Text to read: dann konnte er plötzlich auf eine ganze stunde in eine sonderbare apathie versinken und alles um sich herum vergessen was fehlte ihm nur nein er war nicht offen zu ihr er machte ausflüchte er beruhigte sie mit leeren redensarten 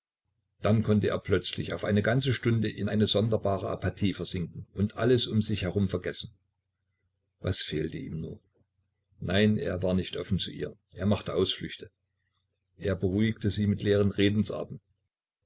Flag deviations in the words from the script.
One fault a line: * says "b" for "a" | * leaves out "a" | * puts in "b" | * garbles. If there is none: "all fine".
all fine